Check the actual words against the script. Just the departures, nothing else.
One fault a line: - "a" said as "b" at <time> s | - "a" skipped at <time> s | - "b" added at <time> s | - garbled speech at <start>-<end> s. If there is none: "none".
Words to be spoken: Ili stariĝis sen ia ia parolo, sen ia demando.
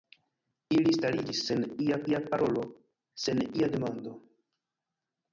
none